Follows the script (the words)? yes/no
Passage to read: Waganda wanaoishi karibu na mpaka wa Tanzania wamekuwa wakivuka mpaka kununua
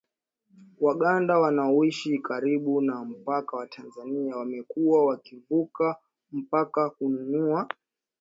yes